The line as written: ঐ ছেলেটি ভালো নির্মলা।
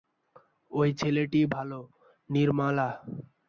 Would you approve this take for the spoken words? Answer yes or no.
yes